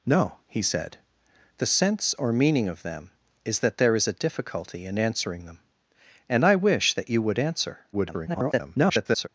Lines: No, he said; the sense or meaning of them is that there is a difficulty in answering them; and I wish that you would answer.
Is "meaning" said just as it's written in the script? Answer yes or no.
yes